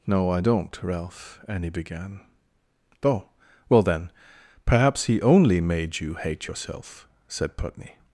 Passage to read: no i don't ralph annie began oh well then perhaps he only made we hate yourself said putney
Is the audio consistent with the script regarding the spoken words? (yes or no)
no